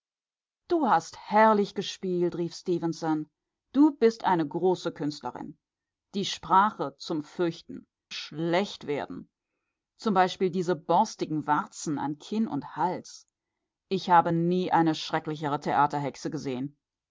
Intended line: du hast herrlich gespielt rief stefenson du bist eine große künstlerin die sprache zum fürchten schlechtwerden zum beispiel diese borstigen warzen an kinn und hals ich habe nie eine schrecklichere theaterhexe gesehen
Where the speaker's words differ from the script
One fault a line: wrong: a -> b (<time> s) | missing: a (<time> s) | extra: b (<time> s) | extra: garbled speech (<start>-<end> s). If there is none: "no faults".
no faults